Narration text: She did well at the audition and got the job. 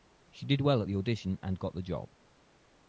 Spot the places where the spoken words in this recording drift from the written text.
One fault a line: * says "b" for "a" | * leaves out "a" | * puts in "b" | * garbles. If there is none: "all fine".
all fine